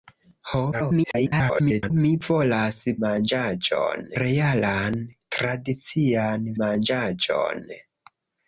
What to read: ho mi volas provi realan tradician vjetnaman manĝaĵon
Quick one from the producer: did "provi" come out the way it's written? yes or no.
no